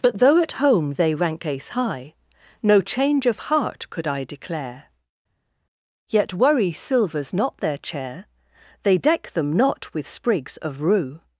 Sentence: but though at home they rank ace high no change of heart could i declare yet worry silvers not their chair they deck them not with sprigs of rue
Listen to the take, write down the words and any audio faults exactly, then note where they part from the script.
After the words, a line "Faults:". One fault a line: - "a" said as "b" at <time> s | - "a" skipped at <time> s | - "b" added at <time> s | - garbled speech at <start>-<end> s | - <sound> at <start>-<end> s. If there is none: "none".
but though at home they rank ace high no change of heart could i declare yet worry silvers not their chair they deck them not with sprigs of rue
Faults:
none